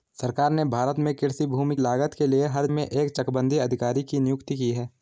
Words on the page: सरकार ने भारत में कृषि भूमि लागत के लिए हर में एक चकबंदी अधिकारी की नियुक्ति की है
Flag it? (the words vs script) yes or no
no